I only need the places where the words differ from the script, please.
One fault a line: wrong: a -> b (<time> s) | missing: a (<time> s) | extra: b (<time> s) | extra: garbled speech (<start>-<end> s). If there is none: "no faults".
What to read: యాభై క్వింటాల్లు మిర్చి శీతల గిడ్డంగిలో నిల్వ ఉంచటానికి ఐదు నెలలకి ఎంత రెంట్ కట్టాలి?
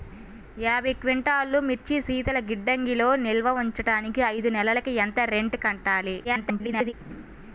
extra: garbled speech (6.2-6.9 s)